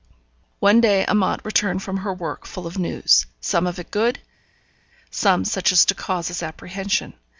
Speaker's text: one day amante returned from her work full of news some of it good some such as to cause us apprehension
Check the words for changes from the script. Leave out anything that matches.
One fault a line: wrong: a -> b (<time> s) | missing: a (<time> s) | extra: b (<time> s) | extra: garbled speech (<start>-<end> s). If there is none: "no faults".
no faults